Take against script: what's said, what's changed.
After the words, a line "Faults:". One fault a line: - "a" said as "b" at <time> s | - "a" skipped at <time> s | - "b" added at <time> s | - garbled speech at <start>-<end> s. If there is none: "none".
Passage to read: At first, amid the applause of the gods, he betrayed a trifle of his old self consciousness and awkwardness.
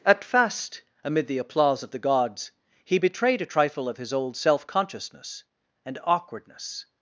At fast, amid the applause of the gods, he betrayed a trifle of his old self consciousness and awkwardness.
Faults:
- "first" said as "fast" at 0.2 s